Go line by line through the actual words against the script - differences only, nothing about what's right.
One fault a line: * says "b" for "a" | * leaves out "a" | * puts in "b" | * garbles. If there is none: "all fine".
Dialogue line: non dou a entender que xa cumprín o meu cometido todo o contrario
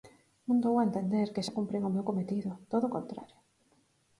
all fine